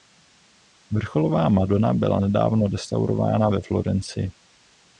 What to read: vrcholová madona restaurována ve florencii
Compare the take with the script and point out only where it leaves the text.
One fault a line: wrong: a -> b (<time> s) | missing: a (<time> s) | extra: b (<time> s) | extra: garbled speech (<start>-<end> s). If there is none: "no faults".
extra: byla nedávno (1.9 s)